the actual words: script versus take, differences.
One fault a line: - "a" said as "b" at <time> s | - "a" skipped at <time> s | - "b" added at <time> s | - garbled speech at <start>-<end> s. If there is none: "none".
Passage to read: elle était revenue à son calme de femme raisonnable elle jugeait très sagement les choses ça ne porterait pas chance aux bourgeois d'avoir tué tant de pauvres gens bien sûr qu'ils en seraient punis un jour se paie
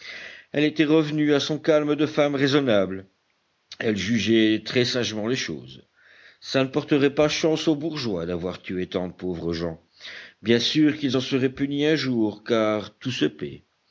- "car tout" added at 12.4 s